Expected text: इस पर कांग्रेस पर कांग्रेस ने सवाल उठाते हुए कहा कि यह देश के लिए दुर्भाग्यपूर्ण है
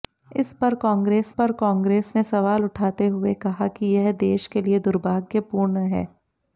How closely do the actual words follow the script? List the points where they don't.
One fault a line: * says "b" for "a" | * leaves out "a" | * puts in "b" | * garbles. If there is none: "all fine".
all fine